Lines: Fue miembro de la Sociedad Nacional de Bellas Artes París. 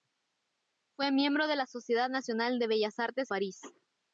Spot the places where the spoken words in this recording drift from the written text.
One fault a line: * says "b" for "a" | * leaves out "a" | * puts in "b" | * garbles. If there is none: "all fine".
all fine